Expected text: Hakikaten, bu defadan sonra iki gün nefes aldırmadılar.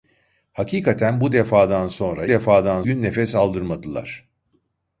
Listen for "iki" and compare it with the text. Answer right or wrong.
wrong